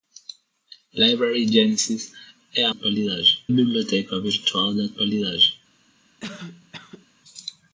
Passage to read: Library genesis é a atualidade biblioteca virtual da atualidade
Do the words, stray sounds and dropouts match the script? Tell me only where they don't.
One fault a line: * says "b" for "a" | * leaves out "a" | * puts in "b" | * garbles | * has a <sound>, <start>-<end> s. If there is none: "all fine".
* has a cough, 6.2-7.1 s